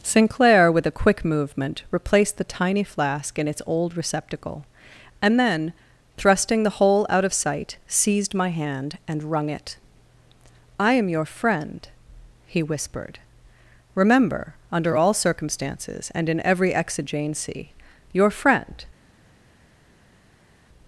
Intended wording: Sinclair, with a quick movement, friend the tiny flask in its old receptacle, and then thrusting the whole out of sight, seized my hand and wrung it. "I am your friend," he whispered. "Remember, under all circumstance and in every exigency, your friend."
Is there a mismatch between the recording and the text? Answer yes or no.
yes